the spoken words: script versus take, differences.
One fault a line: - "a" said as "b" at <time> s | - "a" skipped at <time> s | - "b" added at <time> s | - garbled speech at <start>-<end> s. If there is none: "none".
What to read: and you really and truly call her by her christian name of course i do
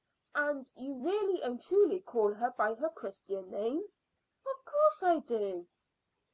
none